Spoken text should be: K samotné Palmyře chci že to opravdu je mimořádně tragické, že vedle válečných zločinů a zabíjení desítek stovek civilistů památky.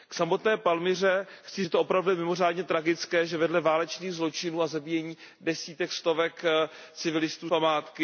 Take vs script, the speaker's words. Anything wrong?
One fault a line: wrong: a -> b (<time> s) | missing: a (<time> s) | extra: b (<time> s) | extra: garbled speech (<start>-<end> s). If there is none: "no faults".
no faults